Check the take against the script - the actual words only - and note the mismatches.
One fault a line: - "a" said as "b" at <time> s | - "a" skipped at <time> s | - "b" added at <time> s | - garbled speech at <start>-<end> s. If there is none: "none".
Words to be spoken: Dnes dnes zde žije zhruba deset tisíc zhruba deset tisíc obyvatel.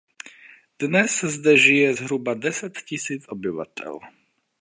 - "dnes" skipped at 1.2 s
- "zhruba deset tisíc" skipped at 3.2 s